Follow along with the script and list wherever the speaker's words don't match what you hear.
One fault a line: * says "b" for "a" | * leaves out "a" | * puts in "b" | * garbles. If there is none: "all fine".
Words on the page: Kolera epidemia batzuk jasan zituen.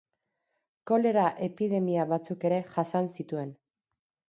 * puts in "ere"